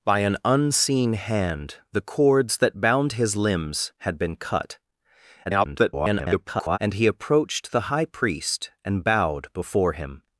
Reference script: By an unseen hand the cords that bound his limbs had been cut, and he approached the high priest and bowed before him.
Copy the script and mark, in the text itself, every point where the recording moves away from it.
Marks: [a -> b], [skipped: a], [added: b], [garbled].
By an unseen hand the cords that bound his limbs had been cut, [garbled] and he approached the high priest and bowed before him.